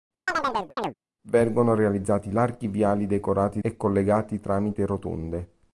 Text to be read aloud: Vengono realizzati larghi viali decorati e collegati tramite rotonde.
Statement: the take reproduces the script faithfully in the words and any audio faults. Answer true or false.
false